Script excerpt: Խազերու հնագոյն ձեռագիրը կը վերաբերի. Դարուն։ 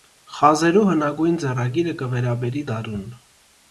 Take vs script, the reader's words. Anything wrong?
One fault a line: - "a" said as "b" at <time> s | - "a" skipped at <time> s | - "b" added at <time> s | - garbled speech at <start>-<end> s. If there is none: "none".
none